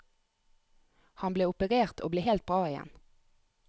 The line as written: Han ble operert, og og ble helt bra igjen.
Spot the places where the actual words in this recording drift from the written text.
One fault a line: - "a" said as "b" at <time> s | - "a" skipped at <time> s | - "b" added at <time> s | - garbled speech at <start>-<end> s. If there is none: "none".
- "og" skipped at 2.1 s